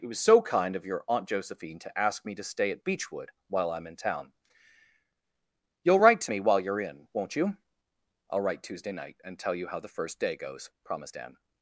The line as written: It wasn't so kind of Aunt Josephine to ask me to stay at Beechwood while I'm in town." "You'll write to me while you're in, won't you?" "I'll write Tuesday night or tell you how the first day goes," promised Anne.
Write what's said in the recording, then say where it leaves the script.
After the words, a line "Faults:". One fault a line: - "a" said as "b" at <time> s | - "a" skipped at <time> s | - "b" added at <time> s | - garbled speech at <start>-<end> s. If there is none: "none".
It was so kind of your Aunt Josephine to ask me to stay at Beechwood while I'm in town." "You'll write to me while you're in, won't you?" "I'll write Tuesday night and tell you how the first day goes," promised Anne.
Faults:
- "wasn't" said as "was" at 0.1 s
- "your" added at 0.8 s
- "or" said as "and" at 9.2 s